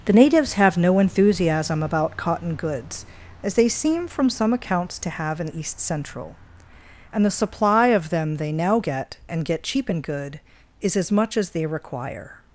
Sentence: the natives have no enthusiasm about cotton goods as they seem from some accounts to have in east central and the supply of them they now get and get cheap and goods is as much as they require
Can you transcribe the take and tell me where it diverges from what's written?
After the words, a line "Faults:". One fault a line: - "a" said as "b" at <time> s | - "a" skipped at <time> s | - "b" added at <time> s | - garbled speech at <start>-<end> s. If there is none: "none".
the natives have no enthusiasm about cotton goods as they seem from some accounts to have in east central and the supply of them they now get and get cheap and good is as much as they require
Faults:
- "goods" said as "good" at 10.0 s